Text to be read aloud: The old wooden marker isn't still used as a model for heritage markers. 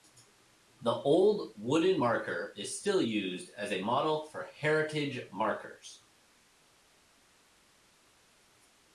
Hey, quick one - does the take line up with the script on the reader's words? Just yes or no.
no